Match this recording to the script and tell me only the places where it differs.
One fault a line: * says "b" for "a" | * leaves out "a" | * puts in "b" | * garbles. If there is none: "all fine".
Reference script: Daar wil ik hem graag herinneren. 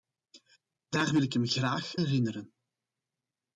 all fine